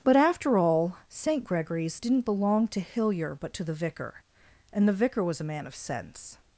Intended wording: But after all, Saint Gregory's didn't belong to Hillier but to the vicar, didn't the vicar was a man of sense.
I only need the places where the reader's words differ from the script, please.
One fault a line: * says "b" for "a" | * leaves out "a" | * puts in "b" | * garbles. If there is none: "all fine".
* says "and" for "didn't"